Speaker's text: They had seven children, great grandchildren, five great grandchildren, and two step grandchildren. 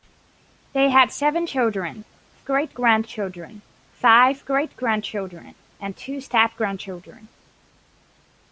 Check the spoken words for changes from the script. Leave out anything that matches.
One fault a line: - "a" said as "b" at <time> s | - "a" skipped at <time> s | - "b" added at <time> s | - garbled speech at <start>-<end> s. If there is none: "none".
none